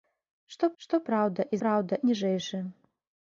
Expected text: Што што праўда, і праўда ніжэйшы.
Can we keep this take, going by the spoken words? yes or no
yes